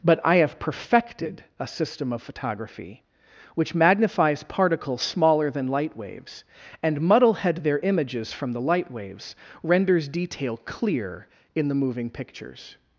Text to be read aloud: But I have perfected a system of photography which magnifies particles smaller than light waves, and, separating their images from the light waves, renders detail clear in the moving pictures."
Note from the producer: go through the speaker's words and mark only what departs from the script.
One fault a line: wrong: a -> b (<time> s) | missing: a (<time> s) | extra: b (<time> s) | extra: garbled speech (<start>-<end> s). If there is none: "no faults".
wrong: separating -> muddlehead (7.0 s)